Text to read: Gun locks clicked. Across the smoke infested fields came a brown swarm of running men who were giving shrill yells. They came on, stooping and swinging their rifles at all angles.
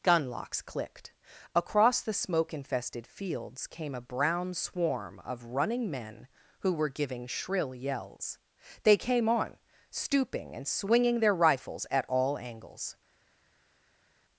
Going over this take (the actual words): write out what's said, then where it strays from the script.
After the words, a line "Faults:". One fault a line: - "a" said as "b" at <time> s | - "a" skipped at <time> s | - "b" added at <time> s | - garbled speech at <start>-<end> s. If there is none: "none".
Gun locks clicked. Across the smoke infested fields came a brown swarm of running men who were giving shrill yells. They came on, stooping and swinging their rifles at all angles.
Faults:
none